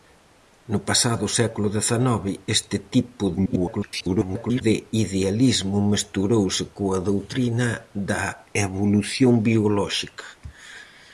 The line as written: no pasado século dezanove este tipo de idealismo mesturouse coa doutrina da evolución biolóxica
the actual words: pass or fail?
fail